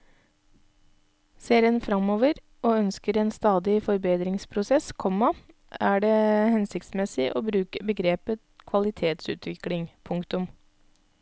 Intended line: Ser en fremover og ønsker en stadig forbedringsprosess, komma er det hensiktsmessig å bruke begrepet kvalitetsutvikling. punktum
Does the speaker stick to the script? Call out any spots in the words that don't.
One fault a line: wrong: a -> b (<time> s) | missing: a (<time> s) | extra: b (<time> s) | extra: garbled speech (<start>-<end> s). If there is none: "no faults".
no faults